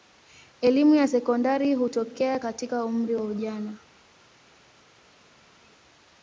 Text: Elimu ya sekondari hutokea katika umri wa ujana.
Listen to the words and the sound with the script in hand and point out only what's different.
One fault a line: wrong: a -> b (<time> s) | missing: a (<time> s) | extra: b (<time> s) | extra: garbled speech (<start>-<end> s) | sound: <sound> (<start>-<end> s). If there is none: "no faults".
no faults